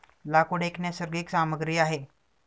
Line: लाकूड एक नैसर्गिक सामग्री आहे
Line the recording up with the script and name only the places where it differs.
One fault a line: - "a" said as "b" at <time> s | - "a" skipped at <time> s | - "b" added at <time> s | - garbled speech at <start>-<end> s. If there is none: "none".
none